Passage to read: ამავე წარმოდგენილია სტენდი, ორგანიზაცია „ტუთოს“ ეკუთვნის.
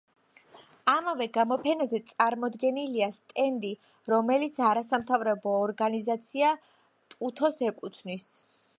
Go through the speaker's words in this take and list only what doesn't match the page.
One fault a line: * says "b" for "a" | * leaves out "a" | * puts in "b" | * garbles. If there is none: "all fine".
* puts in "გამოფენაზე"
* puts in "რომელიც არასამთავრობო"